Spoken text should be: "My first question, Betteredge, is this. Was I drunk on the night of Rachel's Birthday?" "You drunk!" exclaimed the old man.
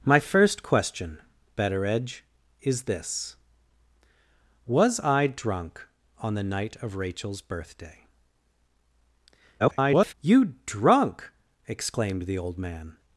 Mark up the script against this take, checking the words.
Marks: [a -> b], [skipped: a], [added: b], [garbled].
"My first question, Betteredge, is this. Was I drunk on the night of Rachel's Birthday?" [garbled] "You drunk!" exclaimed the old man.